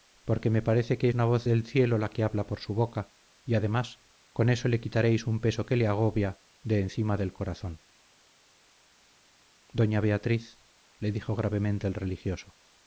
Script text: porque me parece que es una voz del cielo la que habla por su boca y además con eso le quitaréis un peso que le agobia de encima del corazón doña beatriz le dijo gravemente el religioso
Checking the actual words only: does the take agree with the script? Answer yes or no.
no